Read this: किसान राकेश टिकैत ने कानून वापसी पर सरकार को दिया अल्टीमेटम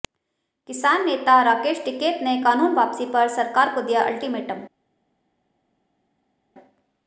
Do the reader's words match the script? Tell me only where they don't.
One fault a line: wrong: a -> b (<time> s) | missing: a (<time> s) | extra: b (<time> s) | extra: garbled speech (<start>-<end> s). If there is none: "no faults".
extra: नेता (1.1 s)